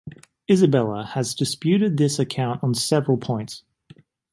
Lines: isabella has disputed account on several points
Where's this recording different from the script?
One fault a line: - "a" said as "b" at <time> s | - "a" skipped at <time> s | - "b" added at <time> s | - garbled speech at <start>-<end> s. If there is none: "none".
- "this" added at 2.0 s